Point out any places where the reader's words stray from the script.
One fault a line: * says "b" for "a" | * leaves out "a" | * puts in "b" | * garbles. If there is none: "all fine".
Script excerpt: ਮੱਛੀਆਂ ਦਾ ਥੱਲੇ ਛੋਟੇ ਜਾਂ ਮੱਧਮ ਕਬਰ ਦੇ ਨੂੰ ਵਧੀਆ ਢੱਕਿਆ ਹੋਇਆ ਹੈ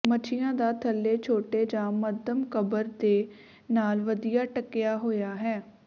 * says "ਨਾਲ" for "ਨੂੰ"